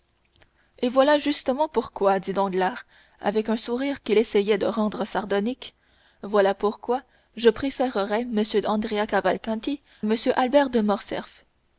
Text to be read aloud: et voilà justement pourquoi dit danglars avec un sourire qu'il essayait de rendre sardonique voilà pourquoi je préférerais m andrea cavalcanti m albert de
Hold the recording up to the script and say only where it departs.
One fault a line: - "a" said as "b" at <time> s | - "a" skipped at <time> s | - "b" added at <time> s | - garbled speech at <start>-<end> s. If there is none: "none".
none